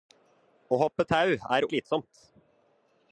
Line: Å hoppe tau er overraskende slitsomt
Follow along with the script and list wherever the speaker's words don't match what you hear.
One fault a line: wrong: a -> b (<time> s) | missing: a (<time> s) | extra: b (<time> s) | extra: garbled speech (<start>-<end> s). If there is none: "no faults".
missing: overraskende (1.7 s)